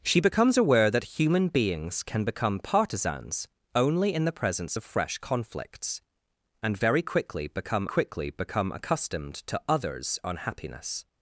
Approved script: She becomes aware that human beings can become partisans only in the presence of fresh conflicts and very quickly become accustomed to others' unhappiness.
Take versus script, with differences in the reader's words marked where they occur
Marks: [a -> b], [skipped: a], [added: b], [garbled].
She becomes aware that human beings can become partisans only in the presence of fresh conflicts and very quickly become [added: quickly become] accustomed to others' unhappiness.